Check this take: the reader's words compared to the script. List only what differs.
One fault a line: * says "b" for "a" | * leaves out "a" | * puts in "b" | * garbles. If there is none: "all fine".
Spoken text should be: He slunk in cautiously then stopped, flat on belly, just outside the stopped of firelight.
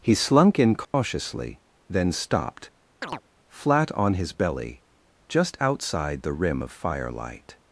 * puts in "his"
* says "rim" for "stopped"